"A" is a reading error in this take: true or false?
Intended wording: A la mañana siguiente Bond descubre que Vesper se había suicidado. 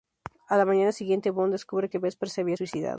false